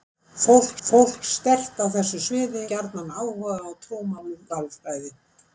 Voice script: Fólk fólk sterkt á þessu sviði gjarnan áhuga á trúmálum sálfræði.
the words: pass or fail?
pass